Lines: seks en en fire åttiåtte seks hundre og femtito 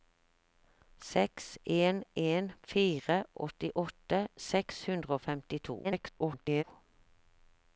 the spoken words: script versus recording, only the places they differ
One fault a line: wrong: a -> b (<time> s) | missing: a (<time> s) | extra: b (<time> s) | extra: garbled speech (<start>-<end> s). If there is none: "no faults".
extra: garbled speech (5.8-6.6 s)